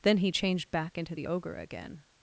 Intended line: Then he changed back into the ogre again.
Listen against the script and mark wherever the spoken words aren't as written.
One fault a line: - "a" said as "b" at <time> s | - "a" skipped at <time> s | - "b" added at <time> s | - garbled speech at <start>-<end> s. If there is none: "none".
none